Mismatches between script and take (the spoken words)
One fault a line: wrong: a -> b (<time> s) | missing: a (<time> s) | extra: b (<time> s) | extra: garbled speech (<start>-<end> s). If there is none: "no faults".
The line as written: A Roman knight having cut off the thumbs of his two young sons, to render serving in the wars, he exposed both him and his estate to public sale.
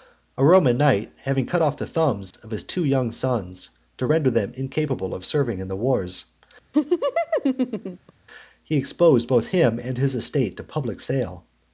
extra: them incapable of (4.3 s)